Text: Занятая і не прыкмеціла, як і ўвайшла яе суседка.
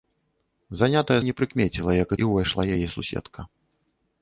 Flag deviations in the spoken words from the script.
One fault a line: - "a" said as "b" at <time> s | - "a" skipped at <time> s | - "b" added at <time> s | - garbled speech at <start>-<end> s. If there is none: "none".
none